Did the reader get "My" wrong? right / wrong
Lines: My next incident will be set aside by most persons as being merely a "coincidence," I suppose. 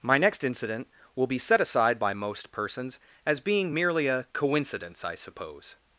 right